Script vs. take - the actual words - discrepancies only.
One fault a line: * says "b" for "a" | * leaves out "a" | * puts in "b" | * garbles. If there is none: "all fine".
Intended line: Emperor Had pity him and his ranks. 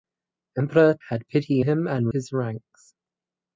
all fine